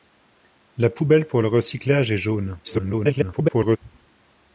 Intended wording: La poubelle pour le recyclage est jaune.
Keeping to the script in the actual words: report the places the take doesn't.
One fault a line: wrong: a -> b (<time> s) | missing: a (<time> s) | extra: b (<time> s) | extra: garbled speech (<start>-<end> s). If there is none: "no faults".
extra: garbled speech (2.6-3.8 s)